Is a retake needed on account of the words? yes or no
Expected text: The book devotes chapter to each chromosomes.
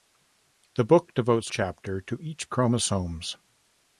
no